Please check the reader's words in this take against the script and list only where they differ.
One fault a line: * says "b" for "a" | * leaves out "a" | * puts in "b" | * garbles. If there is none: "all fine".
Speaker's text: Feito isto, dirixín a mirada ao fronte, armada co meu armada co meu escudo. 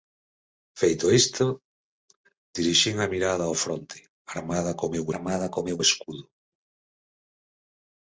all fine